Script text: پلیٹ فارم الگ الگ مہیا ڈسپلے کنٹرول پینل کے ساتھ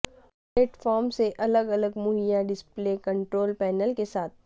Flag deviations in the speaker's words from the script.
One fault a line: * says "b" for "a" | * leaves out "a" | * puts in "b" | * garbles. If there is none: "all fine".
* puts in "سے"